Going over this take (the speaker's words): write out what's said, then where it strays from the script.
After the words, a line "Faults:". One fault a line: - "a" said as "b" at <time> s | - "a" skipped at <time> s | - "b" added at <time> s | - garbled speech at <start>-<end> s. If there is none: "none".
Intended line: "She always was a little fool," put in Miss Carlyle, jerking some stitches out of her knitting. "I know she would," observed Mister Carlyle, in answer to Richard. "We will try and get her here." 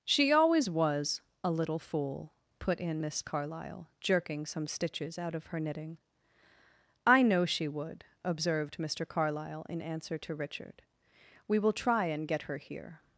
"She always was a little fool," put in Miss Carlyle, jerking some stitches out of her knitting. "I know she would," observed Mister Carlyle, in answer to Richard. "We will try and get her here."
Faults:
none